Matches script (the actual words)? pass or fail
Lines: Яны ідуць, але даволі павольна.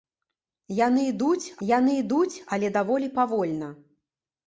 fail